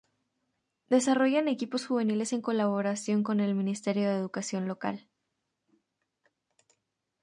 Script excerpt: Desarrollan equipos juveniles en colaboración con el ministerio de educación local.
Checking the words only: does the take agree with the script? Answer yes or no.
yes